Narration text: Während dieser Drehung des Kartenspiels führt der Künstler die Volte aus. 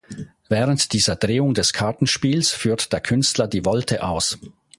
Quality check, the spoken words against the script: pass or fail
pass